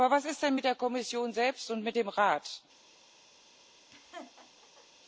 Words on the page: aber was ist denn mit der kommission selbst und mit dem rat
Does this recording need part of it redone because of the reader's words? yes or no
no